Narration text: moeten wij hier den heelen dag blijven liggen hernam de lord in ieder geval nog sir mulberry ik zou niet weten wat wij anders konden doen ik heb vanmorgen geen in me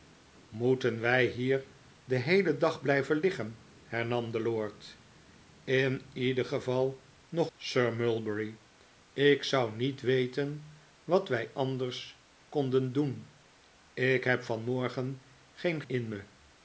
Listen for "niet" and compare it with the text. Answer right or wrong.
right